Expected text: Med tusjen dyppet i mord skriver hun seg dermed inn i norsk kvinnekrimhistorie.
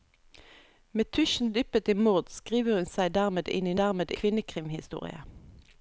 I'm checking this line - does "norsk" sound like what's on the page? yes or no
no